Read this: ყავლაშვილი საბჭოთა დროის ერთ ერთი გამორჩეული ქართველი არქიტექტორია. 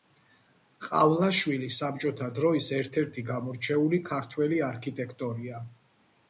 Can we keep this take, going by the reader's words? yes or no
yes